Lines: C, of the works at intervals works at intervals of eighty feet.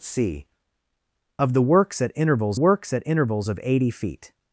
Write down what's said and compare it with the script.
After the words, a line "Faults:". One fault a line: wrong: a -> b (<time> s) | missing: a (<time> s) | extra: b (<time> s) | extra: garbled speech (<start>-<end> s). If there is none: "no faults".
C, of the works at intervals works at intervals of eighty feet.
Faults:
no faults